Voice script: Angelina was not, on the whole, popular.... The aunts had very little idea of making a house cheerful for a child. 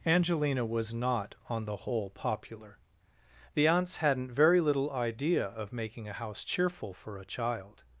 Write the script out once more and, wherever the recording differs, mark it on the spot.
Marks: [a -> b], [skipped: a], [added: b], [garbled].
Angelina was not, on the whole, popular.... The aunts [had -> hadn't] very little idea of making a house cheerful for a child.